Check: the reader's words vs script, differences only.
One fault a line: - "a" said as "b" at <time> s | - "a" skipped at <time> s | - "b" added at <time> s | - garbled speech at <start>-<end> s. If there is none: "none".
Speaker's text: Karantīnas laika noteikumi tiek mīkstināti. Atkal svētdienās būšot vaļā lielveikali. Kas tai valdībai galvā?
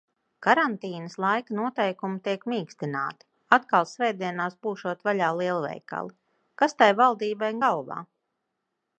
none